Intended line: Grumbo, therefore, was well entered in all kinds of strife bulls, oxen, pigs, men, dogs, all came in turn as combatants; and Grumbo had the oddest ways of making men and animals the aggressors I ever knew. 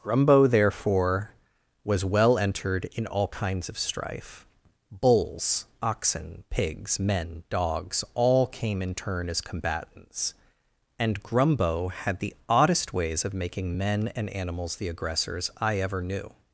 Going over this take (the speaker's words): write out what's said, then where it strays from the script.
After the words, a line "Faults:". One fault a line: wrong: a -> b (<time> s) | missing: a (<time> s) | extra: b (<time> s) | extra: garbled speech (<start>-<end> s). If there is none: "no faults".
Grumbo, therefore, was well entered in all kinds of strife bulls, oxen, pigs, men, dogs, all came in turn as combatants; and Grumbo had the oddest ways of making men and animals the aggressors I ever knew.
Faults:
no faults